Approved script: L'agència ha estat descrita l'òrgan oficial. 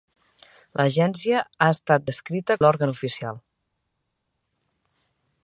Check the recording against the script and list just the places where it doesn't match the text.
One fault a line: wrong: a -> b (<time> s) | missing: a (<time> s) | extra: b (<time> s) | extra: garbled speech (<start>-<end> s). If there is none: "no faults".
no faults